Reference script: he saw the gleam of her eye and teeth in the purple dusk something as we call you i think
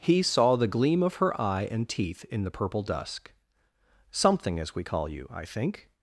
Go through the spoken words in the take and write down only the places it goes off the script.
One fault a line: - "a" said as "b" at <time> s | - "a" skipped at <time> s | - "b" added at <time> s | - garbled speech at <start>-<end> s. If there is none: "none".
none